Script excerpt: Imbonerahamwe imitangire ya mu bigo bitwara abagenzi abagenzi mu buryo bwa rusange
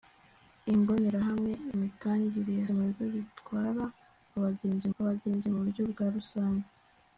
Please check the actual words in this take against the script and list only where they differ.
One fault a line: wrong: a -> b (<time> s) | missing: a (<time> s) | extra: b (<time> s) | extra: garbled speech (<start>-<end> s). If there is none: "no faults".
no faults